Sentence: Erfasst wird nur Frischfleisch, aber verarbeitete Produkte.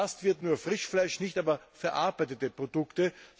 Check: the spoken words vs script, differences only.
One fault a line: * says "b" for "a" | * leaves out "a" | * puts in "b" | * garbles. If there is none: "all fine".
* puts in "nicht"